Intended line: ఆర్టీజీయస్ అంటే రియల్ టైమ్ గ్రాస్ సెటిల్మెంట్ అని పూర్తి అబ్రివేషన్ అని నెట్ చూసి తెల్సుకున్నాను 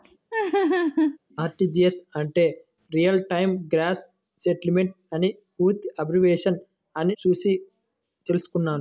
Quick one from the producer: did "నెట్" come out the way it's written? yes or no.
no